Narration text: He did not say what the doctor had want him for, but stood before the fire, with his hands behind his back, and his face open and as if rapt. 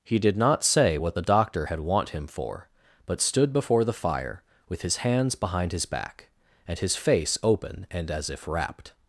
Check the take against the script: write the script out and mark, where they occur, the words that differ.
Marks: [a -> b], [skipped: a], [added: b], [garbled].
He did not say what the doctor had want him for, but stood before the fire, with his hands behind his back, and his face open and as if rapt.